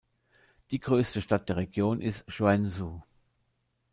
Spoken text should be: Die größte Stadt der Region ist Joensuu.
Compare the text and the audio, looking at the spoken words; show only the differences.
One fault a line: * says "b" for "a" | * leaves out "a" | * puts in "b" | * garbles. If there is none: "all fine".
all fine